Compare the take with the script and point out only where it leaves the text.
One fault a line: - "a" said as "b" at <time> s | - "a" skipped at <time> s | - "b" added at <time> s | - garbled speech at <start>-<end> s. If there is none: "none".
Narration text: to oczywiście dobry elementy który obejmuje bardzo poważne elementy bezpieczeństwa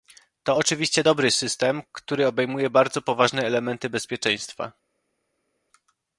- "elementy" said as "system" at 1.3 s